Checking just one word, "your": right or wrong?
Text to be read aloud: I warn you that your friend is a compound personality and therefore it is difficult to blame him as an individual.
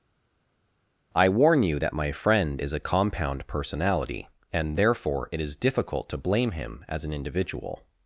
wrong